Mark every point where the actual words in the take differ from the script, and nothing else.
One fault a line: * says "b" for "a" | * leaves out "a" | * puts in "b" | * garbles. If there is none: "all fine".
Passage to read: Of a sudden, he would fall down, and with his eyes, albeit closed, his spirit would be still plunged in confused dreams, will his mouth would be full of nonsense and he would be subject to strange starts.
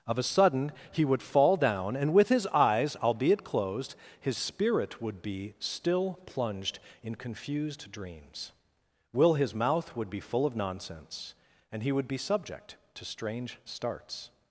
all fine